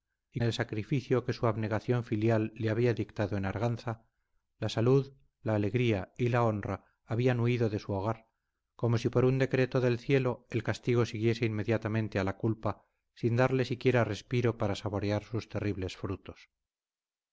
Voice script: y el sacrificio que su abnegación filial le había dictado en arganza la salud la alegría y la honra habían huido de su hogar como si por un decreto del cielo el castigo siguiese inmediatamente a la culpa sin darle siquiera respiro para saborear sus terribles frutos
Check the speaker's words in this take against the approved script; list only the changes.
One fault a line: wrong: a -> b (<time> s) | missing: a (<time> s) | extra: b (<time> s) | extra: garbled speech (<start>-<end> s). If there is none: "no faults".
no faults